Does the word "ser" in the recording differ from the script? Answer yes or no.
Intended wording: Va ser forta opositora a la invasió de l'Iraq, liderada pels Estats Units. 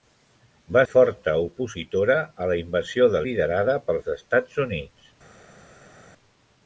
yes